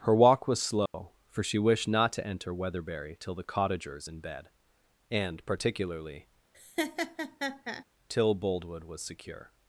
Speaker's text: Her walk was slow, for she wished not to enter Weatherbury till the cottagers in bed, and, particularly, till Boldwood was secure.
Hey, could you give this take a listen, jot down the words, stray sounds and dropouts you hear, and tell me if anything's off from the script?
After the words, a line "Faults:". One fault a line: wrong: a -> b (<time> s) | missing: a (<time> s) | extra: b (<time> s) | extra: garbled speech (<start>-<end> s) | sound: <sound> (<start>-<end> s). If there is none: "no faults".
Her walk was slow, for she wished not to enter Weatherbury till the cottagers in bed, and, particularly, till Boldwood was secure.
Faults:
sound: dropout (0.9-0.9 s)
sound: laugh (6.5-7.8 s)